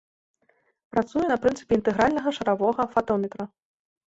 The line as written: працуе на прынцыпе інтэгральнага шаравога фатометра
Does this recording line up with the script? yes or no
yes